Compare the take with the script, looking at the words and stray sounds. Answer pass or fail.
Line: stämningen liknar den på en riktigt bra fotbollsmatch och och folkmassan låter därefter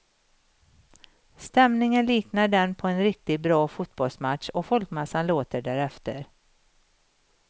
fail